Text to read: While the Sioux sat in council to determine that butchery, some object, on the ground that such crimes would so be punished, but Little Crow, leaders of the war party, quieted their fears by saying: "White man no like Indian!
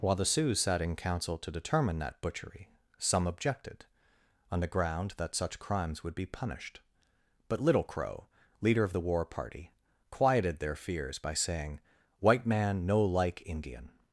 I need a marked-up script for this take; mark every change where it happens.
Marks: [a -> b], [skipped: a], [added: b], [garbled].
While the Sioux sat in council to determine that butchery, some [object, -> objected] on the ground that such crimes would [skipped: so] be punished, but Little Crow, [leaders -> leader] of the war party, quieted their fears by saying: "White man no like Indian!